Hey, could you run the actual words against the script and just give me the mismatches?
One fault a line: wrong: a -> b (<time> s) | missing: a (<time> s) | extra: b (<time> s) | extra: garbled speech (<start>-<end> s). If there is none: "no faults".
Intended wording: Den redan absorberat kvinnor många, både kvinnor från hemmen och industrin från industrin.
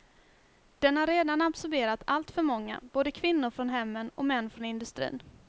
extra: har (1.0 s)
wrong: kvinnor -> alltför (2.1 s)
wrong: industrin -> män (4.2 s)